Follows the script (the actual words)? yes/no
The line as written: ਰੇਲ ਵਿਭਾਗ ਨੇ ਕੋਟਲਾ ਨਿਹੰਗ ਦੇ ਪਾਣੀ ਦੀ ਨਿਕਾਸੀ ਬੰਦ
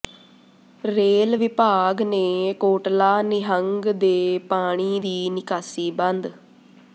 yes